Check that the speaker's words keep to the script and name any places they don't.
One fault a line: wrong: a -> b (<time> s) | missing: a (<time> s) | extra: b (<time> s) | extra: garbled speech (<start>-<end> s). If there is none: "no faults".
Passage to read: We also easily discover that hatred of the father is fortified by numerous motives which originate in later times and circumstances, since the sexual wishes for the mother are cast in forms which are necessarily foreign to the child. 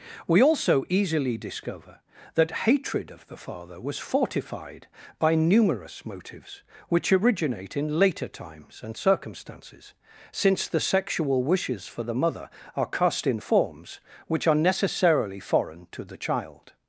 wrong: is -> was (3.8 s)